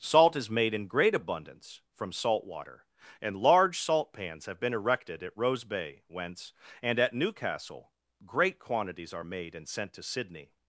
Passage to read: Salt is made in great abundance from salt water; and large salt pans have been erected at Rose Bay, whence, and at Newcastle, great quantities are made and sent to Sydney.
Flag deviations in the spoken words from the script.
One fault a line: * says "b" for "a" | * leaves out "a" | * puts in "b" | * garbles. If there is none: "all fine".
all fine